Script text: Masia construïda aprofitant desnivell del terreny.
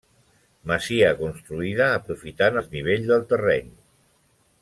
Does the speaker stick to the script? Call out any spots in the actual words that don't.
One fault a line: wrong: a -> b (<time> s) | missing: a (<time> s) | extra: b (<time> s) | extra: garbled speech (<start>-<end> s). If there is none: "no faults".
no faults